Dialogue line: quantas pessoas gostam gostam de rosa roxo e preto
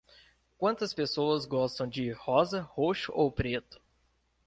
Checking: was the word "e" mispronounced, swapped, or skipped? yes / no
yes